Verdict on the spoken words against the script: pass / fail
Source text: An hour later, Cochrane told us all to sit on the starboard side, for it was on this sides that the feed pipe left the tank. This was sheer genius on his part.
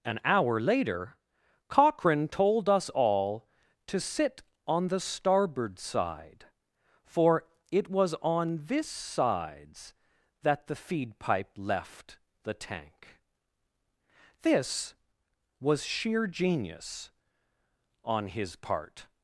pass